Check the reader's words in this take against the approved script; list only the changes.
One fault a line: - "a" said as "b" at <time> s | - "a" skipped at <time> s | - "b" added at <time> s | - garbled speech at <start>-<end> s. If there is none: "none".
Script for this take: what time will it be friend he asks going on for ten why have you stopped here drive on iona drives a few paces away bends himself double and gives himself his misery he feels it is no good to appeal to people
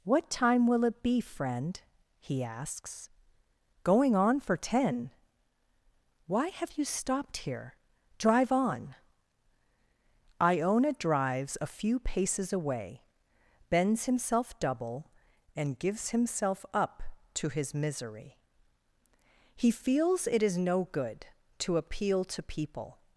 - "up to" added at 16.7 s